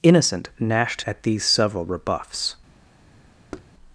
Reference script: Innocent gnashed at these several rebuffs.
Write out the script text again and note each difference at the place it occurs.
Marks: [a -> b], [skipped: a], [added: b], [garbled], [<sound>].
Innocent gnashed at these several rebuffs. [thud]